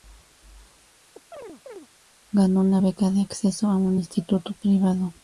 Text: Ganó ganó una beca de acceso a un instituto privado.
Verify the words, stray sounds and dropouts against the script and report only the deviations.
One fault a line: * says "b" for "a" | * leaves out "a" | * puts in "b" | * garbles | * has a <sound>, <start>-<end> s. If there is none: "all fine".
* has a chirp, 1.1-1.9 s
* leaves out "ganó"